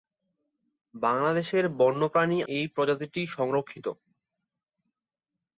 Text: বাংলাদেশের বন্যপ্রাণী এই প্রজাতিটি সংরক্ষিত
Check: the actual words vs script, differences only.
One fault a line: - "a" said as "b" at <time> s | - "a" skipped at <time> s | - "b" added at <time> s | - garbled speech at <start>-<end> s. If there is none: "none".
none